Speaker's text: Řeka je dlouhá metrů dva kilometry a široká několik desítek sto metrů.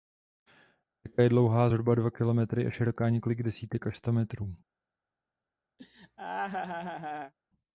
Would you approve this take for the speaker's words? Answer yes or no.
no